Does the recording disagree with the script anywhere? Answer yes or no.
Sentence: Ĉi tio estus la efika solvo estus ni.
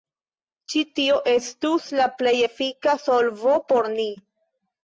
yes